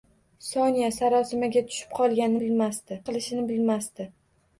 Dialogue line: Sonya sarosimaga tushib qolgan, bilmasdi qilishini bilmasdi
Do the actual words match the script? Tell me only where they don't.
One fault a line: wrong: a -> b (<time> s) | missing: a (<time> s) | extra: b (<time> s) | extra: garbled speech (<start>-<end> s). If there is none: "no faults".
no faults